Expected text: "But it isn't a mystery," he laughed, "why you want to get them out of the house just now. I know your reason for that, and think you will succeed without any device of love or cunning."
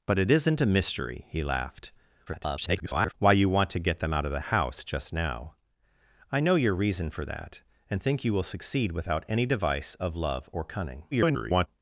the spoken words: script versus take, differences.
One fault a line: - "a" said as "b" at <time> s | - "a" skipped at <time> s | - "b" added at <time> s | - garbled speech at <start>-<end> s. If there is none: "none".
- garbled speech at 2.3-3.1 s
- garbled speech at 11.1-11.7 s